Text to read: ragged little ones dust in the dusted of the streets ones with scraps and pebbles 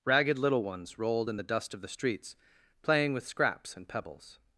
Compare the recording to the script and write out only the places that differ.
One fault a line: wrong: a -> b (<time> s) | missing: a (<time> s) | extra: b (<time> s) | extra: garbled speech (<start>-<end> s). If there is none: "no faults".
wrong: dust -> rolled (1.0 s)
wrong: dusted -> dust (1.4 s)
wrong: ones -> playing (2.8 s)